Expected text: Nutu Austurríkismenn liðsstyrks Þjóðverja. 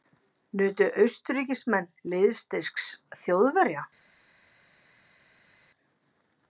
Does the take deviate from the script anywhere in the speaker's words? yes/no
no